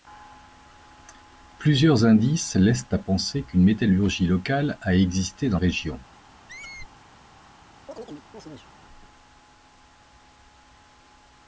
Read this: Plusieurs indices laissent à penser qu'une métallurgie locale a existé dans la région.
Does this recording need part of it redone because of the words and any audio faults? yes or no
yes